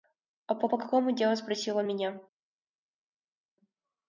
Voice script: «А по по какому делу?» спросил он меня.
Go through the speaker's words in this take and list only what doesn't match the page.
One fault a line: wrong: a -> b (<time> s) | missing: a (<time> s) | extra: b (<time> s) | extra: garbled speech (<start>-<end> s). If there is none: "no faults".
no faults